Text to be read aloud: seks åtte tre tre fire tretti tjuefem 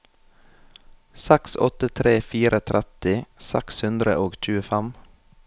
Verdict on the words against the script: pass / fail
fail